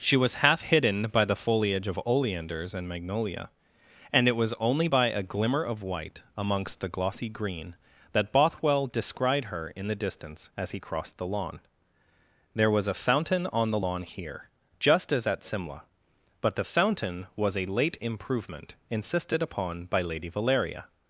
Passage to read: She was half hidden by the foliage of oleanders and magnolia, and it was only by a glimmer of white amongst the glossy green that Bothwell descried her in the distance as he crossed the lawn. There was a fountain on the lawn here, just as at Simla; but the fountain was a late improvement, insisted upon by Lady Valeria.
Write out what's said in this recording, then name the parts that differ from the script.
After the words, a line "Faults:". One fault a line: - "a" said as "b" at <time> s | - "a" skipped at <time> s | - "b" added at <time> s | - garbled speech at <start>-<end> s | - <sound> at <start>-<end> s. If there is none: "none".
She was half hidden by the foliage of oleanders and magnolia, and it was only by a glimmer of white amongst the glossy green that Bothwell descried her in the distance as he crossed the lawn. There was a fountain on the lawn here, just as at Simla; but the fountain was a late improvement, insisted upon by Lady Valeria.
Faults:
none